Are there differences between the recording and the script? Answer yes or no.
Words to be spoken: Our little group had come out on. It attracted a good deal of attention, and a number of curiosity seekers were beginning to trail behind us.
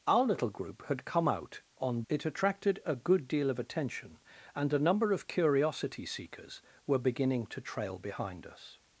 no